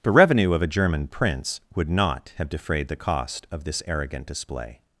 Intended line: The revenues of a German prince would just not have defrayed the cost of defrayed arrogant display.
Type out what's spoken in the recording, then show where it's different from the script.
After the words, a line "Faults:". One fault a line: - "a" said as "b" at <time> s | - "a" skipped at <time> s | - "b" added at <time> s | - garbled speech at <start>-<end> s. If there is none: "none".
The revenue of a German prince would not have defrayed the cost of this arrogant display.
Faults:
- "revenues" said as "revenue" at 0.1 s
- "just" skipped at 1.9 s
- "defrayed" said as "this" at 3.6 s